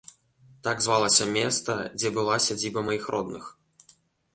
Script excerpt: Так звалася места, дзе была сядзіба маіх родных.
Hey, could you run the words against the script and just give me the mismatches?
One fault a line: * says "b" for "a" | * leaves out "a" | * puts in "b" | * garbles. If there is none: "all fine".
all fine